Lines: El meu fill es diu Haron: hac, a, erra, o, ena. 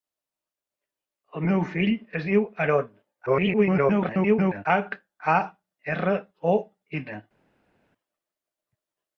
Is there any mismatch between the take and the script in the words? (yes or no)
yes